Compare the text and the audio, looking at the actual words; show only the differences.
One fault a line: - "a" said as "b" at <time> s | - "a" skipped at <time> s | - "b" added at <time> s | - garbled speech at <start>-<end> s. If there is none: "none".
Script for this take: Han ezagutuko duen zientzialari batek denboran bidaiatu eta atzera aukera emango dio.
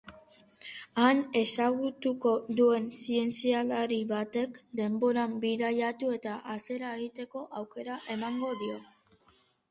- "egiteko" added at 7.0 s